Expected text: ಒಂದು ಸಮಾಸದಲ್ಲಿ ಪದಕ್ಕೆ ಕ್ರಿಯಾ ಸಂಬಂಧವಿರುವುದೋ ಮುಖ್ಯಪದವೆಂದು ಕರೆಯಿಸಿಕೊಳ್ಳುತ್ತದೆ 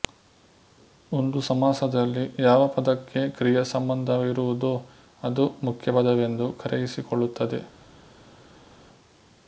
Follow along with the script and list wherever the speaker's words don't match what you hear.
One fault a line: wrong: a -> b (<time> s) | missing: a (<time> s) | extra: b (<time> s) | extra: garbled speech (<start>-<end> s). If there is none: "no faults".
extra: ಯಾವ (2.4 s)
extra: ಅದು (5.2 s)